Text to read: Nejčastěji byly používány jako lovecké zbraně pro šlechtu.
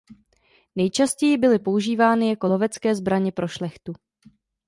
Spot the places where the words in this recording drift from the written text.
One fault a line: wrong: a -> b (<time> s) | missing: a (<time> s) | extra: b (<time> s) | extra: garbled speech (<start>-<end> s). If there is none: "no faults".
no faults